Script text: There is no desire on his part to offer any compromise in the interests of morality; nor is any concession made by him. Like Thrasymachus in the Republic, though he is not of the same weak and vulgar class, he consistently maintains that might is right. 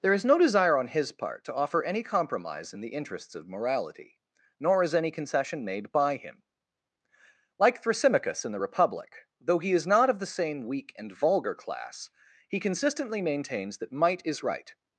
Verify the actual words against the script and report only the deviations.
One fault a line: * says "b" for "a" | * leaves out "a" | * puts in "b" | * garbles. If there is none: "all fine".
all fine